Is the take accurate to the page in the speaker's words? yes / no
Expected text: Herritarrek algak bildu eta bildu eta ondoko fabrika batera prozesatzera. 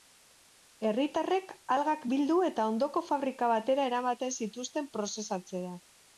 no